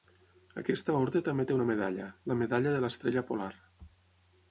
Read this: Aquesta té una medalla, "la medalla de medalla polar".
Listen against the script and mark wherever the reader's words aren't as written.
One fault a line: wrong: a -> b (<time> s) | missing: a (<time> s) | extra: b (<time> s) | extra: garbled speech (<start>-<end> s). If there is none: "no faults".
extra: orde també (1.0 s)
wrong: medalla -> l'estrella (2.9 s)